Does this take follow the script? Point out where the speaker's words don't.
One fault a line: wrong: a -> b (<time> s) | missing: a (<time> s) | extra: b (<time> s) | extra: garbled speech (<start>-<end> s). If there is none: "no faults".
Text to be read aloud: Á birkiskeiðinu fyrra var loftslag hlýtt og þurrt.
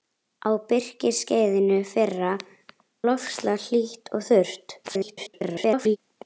missing: var (2.3 s)
extra: garbled speech (4.8-6.0 s)